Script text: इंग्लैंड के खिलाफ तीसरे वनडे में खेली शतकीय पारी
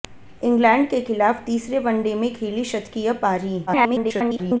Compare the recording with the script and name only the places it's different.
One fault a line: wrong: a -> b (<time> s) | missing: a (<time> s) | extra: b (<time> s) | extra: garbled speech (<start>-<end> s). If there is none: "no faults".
extra: garbled speech (3.7-4.6 s)